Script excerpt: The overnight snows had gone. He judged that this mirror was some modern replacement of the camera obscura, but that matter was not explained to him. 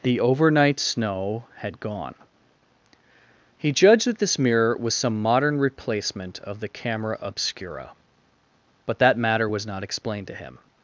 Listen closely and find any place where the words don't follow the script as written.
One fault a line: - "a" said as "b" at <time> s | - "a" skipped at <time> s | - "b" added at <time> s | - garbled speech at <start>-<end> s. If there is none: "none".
- "snows" said as "snow" at 0.8 s